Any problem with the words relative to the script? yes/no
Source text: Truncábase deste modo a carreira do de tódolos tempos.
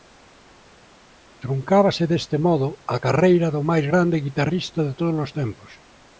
yes